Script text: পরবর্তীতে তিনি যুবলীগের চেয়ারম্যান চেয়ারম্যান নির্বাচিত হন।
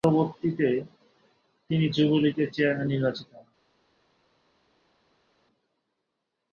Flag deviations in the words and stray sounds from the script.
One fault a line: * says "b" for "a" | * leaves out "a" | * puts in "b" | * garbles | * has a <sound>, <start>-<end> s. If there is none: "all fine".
* leaves out "চেয়ারম্যান"